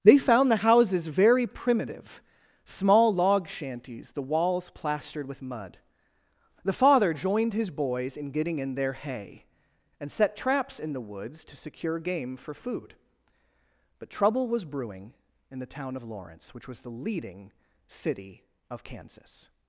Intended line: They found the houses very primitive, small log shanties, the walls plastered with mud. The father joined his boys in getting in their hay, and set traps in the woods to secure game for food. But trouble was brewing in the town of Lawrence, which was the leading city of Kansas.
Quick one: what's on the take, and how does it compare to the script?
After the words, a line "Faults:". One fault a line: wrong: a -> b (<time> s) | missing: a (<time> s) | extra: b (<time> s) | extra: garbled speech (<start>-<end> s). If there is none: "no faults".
They found the houses very primitive, small log shanties, the walls plastered with mud. The father joined his boys in getting in their hay, and set traps in the woods to secure game for food. But trouble was brewing in the town of Lawrence, which was the leading city of Kansas.
Faults:
no faults